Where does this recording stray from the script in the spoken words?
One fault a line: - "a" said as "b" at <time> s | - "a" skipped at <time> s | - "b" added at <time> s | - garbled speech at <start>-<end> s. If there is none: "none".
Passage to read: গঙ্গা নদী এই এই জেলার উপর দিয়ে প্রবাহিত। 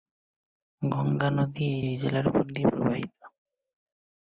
none